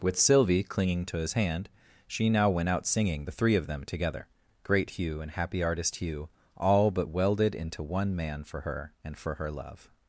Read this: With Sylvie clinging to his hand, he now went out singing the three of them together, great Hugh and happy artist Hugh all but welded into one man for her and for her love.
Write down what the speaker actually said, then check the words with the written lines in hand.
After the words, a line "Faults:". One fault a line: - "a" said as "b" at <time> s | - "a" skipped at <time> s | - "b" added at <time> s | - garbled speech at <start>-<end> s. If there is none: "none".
With Sylvie clinging to his hand, she now went out singing the three of them together, great Hugh and happy artist Hugh all but welded into one man for her and for her love.
Faults:
- "he" said as "she" at 2.1 s